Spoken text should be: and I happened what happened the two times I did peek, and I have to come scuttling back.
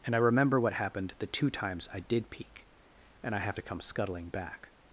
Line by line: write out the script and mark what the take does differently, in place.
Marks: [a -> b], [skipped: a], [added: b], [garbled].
and I [happened -> remember] what happened the two times I did peek, and I have to come scuttling back.